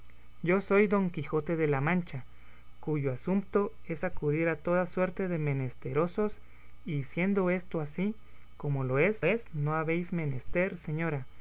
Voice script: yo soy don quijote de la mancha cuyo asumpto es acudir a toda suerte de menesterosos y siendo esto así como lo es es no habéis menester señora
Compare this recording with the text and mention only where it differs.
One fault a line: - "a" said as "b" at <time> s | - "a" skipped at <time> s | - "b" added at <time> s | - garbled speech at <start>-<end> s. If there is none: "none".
none